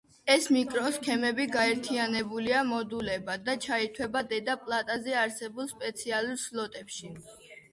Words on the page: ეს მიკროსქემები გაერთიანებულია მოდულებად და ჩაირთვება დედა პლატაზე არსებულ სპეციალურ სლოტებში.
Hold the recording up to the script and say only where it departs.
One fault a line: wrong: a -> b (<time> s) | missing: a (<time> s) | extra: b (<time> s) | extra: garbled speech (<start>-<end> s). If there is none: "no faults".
no faults